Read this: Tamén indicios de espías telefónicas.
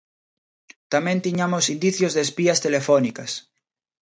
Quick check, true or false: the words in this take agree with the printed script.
false